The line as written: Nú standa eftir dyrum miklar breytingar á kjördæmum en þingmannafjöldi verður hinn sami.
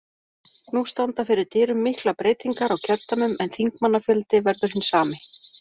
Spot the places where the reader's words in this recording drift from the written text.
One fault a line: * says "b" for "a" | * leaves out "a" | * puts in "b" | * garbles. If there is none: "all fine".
* says "fyrir" for "eftir"